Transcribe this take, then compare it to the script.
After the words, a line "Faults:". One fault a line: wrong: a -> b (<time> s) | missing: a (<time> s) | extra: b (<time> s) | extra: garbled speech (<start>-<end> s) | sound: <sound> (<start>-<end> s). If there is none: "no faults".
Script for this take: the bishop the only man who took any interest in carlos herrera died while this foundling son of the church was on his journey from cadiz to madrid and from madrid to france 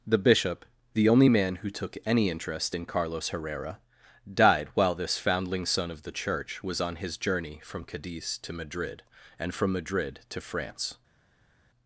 the bishop the only man who took any interest in carlos herrera died while this foundling son of the church was on his journey from cadiz to madrid and from madrid to france
Faults:
no faults